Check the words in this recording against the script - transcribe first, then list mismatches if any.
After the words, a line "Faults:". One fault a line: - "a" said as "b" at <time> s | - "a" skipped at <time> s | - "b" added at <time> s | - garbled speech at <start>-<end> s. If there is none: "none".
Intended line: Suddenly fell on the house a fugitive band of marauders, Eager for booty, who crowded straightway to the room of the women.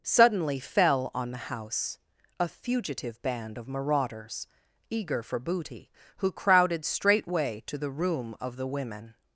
Suddenly fell on the house a fugitive band of marauders, Eager for booty, who crowded straightway to the room of the women.
Faults:
none